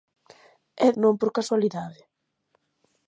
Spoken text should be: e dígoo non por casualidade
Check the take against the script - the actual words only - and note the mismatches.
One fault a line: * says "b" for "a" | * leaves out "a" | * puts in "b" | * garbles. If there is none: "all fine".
* leaves out "dígoo"